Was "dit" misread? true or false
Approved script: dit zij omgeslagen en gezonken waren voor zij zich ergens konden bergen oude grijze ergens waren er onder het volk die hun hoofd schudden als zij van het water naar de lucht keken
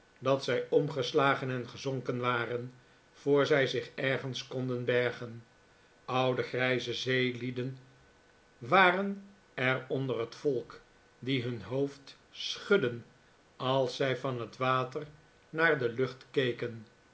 true